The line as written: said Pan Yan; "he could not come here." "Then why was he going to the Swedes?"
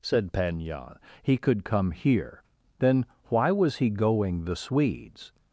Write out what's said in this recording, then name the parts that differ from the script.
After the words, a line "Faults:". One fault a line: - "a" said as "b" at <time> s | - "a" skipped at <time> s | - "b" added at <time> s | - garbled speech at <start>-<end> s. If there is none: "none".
said Pan Yan; "he could come here." "Then why was he going the Swedes?"
Faults:
- "not" skipped at 1.6 s
- "to" skipped at 4.5 s